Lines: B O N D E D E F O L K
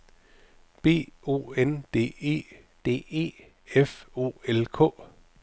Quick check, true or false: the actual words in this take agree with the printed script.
true